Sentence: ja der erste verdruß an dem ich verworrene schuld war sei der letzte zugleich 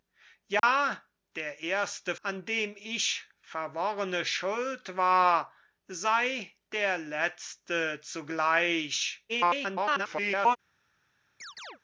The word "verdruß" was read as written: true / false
false